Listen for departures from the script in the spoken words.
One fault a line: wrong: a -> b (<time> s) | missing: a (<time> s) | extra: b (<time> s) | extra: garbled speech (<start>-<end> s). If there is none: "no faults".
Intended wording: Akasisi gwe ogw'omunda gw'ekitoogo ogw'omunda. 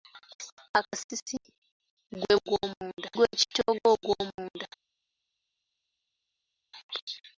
no faults